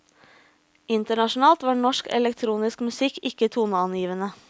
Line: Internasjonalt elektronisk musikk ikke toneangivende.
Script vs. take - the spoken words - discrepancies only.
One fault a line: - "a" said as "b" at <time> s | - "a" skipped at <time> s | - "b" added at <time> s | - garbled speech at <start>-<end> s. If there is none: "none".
- "var norsk" added at 1.6 s